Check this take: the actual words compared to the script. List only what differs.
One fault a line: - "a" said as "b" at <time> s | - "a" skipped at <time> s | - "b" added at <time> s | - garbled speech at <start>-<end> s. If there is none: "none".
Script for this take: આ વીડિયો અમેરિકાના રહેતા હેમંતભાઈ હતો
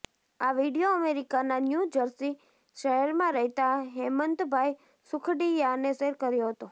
- "ન્યૂ જર્સી શહેરમાં" added at 1.6 s
- "સુખડિયાએ શેર કર્યો" added at 5.1 s